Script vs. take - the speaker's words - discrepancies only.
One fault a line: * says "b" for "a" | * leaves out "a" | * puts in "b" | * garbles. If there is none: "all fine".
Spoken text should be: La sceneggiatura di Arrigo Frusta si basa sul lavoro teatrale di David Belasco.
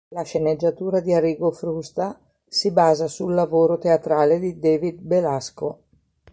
all fine